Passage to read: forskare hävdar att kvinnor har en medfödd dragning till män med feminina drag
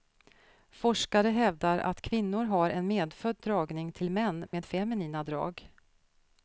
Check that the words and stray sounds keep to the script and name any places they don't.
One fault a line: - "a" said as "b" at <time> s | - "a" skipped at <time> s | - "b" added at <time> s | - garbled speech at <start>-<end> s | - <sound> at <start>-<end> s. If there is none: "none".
- dropout at 4.5-4.5 s